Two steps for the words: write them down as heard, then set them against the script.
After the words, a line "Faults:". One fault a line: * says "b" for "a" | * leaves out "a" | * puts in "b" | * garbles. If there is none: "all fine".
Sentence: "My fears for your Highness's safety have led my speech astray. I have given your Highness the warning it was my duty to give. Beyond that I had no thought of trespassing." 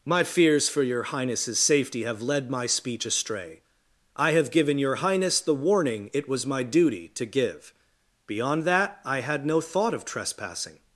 "My fears for your Highness's safety have led my speech astray. I have given your Highness the warning it was my duty to give. Beyond that I had no thought of trespassing."
Faults:
all fine